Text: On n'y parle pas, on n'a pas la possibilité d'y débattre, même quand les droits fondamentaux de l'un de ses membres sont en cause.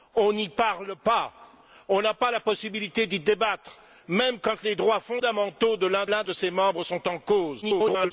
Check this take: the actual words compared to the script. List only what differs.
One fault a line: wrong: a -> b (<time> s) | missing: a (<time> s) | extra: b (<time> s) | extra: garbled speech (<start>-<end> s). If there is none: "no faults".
extra: l'un (6.1 s)
extra: garbled speech (7.6-8.1 s)